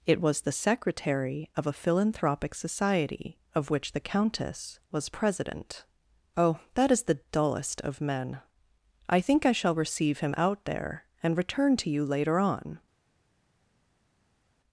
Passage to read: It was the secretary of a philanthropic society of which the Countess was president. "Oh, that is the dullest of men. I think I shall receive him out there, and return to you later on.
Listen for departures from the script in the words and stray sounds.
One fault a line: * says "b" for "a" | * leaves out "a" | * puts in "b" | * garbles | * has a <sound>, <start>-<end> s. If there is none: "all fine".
all fine